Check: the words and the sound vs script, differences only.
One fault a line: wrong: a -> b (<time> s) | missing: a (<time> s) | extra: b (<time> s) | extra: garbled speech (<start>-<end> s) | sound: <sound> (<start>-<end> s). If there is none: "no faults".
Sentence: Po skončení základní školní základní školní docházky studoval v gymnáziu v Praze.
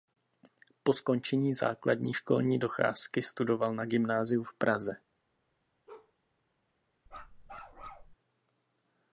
missing: základní školní (2.6 s)
wrong: v -> na (3.8 s)
sound: bark (5.9-6.1 s)
sound: bark (7.1-8.2 s)